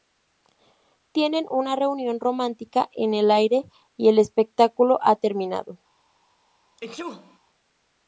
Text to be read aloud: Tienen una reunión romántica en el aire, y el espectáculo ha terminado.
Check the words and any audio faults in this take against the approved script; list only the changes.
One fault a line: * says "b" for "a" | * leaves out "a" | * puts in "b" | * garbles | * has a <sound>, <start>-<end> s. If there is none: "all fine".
* has a sneeze, 6.8-7.4 s